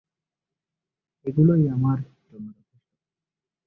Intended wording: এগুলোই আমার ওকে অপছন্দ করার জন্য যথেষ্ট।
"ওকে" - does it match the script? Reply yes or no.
no